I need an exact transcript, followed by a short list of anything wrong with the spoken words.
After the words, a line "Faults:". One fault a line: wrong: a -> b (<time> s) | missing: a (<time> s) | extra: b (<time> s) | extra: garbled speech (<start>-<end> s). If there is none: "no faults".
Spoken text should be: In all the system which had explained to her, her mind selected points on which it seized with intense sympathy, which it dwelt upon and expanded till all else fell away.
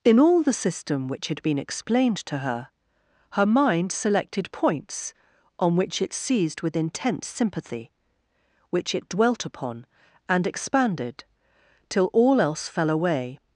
In all the system which had been explained to her, her mind selected points on which it seized with intense sympathy, which it dwelt upon and expanded till all else fell away.
Faults:
extra: been (1.4 s)